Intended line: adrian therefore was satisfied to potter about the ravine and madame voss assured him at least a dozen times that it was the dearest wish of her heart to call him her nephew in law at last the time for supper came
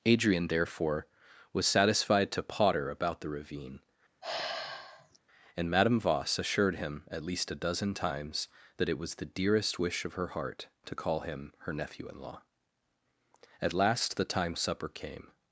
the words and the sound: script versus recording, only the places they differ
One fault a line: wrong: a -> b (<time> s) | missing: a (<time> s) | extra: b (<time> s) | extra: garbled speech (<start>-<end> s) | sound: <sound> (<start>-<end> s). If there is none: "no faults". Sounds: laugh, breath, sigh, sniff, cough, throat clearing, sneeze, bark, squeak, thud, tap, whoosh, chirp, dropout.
sound: sigh (4.2-5.2 s)
missing: for (14.6 s)